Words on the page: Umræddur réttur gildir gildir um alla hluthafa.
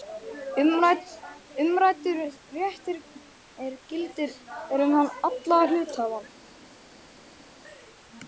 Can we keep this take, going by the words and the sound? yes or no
no